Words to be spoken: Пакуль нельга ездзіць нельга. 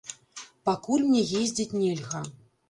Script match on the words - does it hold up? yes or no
no